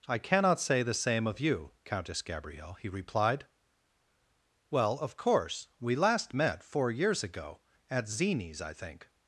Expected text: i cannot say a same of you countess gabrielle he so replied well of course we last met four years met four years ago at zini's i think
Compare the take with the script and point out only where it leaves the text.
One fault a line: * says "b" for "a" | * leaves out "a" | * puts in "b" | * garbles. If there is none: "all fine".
* says "the" for "a"
* leaves out "so"
* leaves out "met four years"